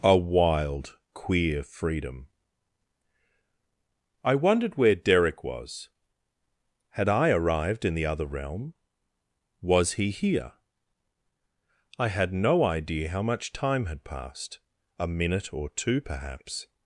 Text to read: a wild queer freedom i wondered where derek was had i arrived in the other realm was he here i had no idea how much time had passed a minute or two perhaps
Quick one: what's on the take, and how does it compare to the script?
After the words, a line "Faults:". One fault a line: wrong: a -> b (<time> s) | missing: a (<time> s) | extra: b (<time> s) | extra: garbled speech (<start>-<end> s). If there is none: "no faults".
a wild queer freedom i wondered where derek was had i arrived in the other realm was he here i had no idea how much time had passed a minute or two perhaps
Faults:
no faults